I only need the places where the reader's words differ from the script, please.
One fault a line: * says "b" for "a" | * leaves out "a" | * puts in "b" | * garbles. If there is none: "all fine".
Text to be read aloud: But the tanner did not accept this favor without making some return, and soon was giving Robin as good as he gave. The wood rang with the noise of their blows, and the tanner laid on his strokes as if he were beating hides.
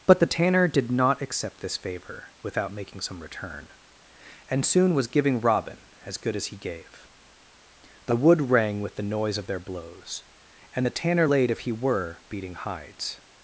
* leaves out "on his strokes as"